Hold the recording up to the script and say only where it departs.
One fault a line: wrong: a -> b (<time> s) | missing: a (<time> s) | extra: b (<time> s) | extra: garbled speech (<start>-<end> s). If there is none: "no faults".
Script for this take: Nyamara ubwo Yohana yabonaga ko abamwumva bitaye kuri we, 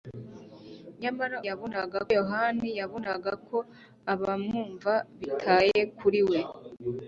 wrong: ubwo -> yabonaga (1.5 s)